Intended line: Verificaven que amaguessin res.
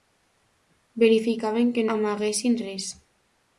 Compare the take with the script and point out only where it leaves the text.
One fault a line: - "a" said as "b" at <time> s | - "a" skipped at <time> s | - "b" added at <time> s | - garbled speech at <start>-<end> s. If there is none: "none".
none